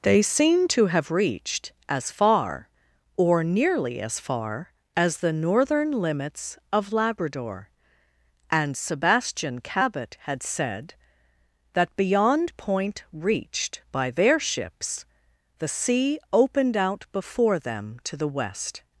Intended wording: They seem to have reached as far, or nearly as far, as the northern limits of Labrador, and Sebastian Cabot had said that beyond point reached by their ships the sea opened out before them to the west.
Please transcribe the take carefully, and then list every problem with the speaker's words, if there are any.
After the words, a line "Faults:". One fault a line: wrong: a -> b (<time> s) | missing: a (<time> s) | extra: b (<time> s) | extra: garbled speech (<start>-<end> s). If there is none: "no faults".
They seem to have reached as far, or nearly as far, as the northern limits of Labrador, and Sebastian Cabot had said that beyond point reached by their ships the sea opened out before them to the west.
Faults:
no faults